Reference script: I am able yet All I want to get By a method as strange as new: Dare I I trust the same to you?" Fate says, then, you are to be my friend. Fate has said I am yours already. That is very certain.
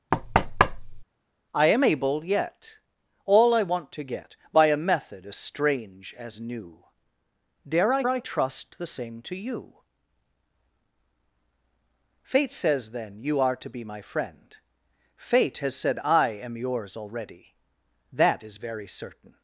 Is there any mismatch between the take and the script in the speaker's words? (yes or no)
no